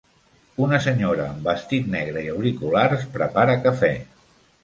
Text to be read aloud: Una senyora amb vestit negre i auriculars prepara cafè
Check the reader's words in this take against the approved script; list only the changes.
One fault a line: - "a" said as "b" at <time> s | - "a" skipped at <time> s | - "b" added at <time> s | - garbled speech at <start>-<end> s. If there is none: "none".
none